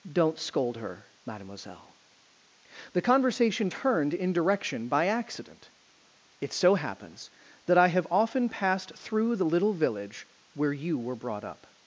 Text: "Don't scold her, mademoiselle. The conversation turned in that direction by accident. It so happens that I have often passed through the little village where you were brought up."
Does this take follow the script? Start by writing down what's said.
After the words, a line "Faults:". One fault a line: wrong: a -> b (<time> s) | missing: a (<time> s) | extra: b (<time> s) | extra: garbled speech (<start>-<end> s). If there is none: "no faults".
"Don't scold her, mademoiselle. The conversation turned in direction by accident. It so happens that I have often passed through the little village where you were brought up."
Faults:
missing: that (4.3 s)